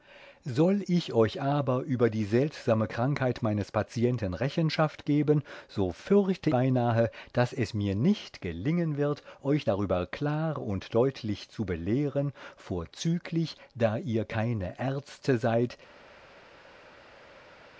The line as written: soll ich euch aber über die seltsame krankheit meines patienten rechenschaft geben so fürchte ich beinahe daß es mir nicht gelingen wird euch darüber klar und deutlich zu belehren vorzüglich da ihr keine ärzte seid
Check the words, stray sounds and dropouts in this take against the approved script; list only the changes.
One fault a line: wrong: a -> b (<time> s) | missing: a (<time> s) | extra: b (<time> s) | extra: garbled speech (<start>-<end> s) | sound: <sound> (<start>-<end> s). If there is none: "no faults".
missing: ich (6.5 s)